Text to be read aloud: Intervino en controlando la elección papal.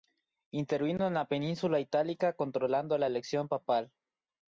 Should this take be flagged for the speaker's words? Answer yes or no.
yes